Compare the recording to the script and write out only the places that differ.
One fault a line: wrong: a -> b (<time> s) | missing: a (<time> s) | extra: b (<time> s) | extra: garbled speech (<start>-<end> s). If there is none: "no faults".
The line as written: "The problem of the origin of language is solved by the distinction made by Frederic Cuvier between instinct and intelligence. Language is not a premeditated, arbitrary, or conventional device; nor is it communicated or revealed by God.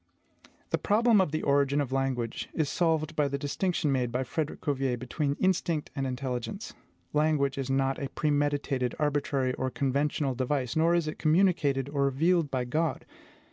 no faults